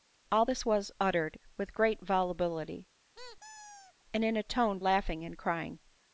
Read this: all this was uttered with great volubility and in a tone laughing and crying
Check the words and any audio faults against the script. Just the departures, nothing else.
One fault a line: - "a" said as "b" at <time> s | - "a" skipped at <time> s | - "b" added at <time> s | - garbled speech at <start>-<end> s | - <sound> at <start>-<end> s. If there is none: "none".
- squeak at 3.1-3.9 s